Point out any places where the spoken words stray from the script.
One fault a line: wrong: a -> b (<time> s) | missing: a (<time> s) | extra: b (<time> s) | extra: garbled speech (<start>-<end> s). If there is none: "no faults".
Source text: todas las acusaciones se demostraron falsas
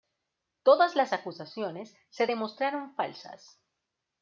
no faults